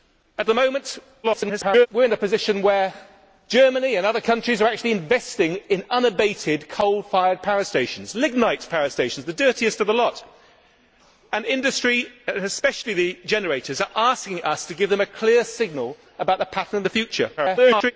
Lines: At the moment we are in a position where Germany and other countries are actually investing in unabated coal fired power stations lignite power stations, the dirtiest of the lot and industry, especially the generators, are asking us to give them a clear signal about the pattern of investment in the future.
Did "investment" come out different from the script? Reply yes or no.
yes